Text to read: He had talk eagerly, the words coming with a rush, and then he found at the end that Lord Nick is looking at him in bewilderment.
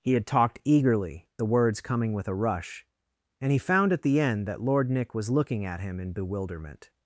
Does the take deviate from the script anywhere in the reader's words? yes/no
yes